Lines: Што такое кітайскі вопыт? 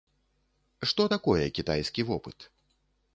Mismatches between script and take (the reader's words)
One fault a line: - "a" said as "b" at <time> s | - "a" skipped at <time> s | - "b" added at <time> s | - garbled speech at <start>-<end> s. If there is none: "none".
none